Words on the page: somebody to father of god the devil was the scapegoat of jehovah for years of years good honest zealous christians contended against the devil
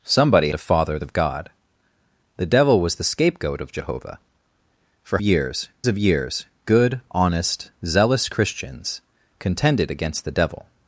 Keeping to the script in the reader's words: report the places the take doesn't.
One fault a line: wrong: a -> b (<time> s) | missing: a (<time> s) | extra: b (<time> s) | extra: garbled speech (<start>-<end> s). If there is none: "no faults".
no faults